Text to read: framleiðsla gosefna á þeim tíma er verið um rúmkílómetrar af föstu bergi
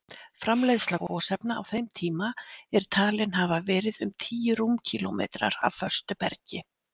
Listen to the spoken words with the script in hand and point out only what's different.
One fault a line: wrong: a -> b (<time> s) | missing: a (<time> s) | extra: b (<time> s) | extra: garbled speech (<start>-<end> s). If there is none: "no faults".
extra: talin hafa (3.0 s)
extra: tíu (4.3 s)